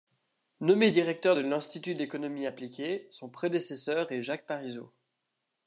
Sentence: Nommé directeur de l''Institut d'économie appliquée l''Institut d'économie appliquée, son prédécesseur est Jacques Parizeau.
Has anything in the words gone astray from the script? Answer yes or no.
yes